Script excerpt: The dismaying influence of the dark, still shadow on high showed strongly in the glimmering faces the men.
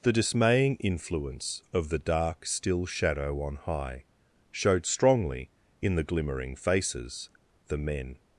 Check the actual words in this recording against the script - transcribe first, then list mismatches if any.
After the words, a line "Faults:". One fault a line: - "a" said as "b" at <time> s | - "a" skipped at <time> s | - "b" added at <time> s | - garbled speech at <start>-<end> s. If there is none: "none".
The dismaying influence of the dark, still shadow on high showed strongly in the glimmering faces the men.
Faults:
none